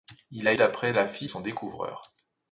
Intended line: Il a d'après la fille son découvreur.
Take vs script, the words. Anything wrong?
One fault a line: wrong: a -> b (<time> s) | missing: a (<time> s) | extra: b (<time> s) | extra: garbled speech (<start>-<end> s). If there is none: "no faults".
no faults